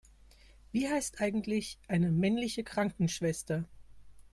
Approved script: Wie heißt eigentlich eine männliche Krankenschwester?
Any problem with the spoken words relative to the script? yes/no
no